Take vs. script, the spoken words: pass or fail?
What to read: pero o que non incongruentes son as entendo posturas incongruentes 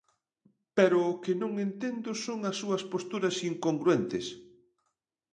fail